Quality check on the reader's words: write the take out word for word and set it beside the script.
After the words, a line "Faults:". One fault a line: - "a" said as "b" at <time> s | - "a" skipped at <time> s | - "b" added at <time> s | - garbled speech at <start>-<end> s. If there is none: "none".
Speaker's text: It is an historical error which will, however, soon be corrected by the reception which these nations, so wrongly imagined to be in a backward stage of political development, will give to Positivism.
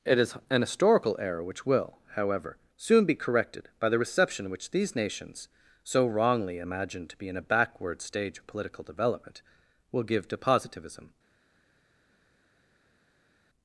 It is an historical error which will, however, soon be corrected by the reception which these nations, so wrongly imagined to be in a backward stage of political development, will give to Positivism.
Faults:
none